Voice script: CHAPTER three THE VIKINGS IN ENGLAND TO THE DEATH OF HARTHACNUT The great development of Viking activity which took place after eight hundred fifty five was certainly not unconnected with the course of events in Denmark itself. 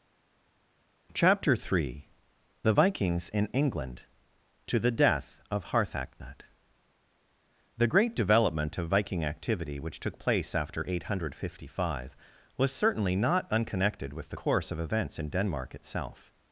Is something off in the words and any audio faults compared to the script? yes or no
no